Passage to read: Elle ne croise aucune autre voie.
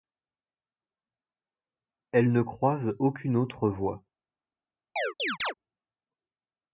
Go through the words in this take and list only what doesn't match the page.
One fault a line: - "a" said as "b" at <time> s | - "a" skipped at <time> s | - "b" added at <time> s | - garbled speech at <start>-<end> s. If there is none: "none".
none